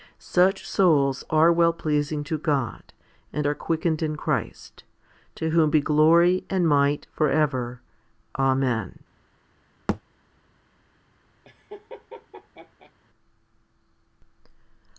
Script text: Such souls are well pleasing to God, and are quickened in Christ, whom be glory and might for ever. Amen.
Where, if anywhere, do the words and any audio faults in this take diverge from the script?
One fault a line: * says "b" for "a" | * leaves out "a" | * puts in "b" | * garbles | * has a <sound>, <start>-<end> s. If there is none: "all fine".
* puts in "to"
* has a thud, 9.9-10.0 s
* has a laugh, 11.4-12.9 s